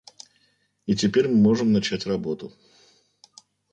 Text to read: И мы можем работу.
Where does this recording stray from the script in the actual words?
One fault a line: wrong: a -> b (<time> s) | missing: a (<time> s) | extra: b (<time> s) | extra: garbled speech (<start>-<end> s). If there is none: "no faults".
extra: теперь (0.9 s)
extra: начать (1.7 s)